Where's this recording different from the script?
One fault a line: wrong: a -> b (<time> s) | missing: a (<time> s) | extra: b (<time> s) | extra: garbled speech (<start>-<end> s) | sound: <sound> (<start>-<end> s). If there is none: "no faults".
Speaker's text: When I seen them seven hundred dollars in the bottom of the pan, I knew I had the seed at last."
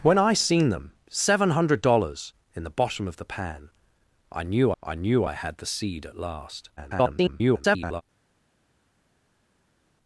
extra: knew I (4.9 s)
extra: garbled speech (6.8-8.0 s)